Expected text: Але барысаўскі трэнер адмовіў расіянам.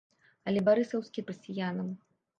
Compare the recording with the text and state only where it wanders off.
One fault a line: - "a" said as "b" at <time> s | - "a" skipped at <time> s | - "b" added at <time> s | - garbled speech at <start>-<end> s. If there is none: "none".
- "трэнер адмовіў" skipped at 1.2 s